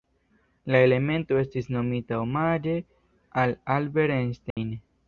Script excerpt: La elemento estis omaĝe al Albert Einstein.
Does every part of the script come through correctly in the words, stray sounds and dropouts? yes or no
no